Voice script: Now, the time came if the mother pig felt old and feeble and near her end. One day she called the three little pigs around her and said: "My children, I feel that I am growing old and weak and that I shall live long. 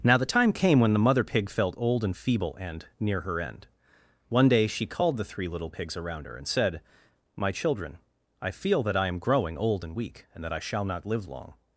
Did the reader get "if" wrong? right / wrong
wrong